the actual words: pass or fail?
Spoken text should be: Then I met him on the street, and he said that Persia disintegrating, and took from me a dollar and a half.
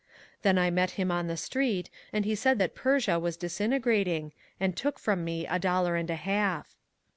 fail